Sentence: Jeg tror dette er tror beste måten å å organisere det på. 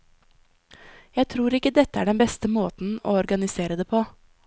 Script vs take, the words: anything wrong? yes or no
yes